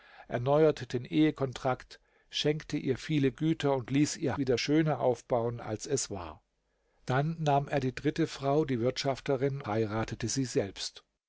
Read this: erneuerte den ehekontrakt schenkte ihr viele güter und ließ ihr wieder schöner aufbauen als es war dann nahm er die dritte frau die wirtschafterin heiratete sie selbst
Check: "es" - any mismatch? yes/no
no